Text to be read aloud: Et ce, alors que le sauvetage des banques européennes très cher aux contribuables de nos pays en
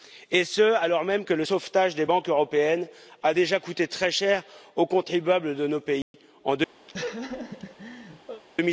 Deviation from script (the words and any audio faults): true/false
true